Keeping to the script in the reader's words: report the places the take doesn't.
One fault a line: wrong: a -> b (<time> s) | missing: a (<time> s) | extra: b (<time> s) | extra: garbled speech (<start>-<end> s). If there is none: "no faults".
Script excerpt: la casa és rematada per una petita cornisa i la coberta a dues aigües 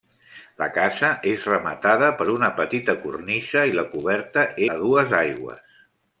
no faults